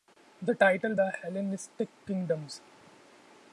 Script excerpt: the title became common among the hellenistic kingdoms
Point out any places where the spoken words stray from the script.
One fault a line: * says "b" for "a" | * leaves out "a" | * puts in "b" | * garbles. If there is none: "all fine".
* leaves out "became common among"